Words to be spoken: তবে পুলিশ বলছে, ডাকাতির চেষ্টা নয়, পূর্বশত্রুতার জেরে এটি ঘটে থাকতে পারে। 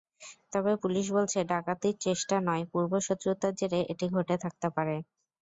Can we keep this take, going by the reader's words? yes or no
yes